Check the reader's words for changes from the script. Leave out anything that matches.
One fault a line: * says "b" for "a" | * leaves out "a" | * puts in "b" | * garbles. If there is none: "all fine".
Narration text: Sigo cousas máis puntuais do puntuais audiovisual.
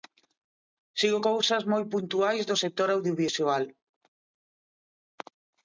* says "moi" for "máis"
* says "sector" for "puntuais"